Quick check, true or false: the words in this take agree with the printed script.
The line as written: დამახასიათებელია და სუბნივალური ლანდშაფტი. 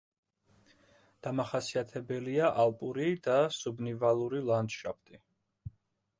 false